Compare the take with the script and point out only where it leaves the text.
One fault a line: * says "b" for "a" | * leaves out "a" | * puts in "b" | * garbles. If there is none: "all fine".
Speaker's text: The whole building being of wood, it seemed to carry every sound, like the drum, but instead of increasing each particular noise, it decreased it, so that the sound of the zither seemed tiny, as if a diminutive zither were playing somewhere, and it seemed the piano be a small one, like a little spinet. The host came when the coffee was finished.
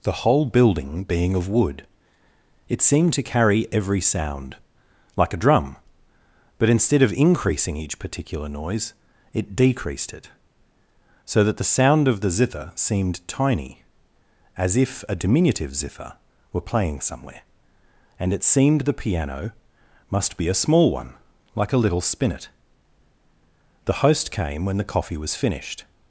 * says "a" for "the"
* puts in "must"